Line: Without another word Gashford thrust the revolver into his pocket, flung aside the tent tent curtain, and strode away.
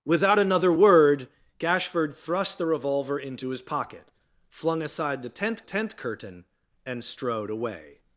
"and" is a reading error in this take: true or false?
false